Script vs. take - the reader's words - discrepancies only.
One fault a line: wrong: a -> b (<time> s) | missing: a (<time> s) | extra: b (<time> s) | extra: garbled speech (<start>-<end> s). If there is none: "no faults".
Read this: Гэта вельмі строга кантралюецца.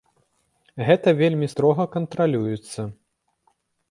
no faults